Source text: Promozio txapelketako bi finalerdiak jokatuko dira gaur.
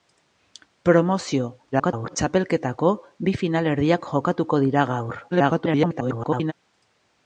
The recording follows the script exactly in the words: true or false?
false